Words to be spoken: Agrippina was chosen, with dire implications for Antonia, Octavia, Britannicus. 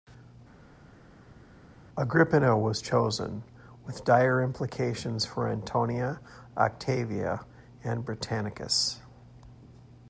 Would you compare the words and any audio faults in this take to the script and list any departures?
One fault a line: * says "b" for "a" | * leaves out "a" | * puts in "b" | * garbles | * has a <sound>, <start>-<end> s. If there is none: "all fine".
* puts in "and"